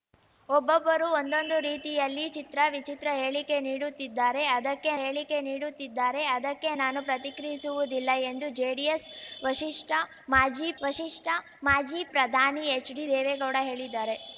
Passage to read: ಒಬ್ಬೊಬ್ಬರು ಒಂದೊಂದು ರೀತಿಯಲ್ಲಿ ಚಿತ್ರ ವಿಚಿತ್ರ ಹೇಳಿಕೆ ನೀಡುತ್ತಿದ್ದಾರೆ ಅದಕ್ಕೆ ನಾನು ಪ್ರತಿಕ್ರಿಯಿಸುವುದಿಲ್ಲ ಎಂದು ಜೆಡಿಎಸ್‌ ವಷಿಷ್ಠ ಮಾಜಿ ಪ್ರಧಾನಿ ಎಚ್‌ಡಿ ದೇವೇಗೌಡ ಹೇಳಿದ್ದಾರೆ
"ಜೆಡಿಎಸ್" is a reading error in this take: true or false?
false